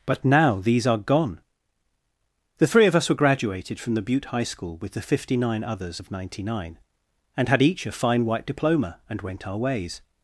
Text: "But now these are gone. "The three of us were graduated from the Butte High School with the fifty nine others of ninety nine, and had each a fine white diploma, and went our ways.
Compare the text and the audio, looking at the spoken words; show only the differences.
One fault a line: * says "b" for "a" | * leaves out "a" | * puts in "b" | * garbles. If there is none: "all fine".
all fine